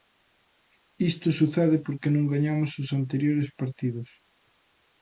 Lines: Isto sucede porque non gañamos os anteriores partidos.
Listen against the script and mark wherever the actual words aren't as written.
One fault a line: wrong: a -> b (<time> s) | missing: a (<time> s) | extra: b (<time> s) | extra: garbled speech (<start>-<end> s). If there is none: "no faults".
no faults